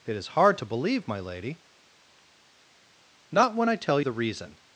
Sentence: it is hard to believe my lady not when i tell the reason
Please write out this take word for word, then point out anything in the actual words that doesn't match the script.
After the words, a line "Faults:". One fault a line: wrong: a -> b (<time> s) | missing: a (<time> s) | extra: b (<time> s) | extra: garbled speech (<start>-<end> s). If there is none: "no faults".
it is hard to believe my lady not when i tell the reason
Faults:
no faults